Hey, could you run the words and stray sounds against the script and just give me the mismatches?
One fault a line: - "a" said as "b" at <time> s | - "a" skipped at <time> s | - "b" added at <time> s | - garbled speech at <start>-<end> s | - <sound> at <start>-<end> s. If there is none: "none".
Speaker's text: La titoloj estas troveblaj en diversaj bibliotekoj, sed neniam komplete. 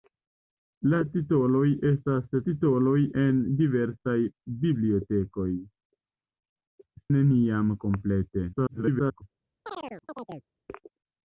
- "troveblaj" said as "titoloj" at 2.5 s
- "sed" skipped at 5.5 s
- garbled speech at 8.5-9.2 s
- chirp at 9.6-10.5 s